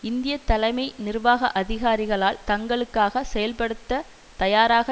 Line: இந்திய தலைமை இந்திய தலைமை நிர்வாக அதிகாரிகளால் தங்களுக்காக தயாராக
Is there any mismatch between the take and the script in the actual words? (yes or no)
yes